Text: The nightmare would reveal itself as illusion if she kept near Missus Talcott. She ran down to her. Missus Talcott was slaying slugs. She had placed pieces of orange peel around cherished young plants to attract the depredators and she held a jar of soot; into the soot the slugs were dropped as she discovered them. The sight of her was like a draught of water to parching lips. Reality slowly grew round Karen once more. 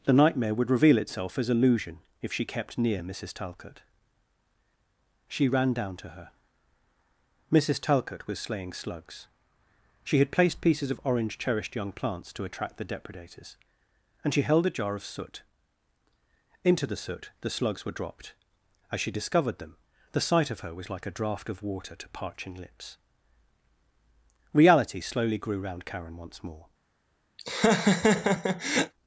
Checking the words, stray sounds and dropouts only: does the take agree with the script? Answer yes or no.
no